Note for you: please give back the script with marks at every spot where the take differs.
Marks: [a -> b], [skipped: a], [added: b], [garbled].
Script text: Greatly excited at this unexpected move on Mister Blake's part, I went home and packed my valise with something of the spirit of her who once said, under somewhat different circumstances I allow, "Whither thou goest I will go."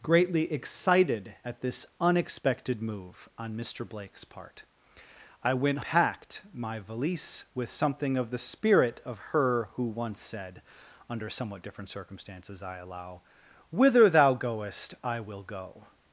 Greatly excited at this unexpected move on Mister Blake's part, I went [skipped: home and] packed my valise with something of the spirit of her who once said, under somewhat different circumstances I allow, "Whither thou goest I will go."